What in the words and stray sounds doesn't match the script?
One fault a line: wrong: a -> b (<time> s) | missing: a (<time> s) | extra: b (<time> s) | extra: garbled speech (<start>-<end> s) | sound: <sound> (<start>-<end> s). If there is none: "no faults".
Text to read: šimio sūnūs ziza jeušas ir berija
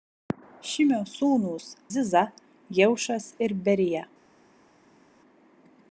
no faults